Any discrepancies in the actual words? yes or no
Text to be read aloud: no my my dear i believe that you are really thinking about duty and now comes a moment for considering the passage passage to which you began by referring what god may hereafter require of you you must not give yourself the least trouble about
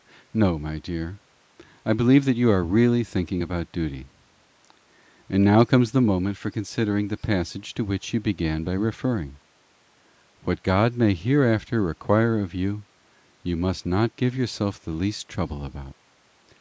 yes